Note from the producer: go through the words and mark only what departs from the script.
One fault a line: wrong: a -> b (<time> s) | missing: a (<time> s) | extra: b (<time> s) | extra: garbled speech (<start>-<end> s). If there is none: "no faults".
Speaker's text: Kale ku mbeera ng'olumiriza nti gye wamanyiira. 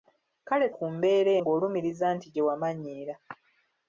no faults